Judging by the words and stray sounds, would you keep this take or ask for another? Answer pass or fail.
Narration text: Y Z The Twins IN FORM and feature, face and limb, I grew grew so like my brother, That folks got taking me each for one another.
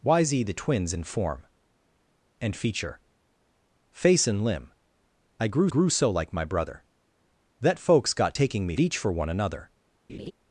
fail